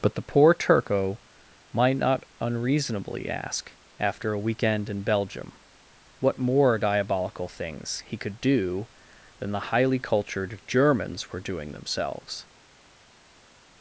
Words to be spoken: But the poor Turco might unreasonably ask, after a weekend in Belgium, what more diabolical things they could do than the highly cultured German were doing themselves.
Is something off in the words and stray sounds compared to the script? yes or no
yes